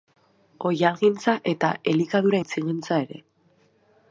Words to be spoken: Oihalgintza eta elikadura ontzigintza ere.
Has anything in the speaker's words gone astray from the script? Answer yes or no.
no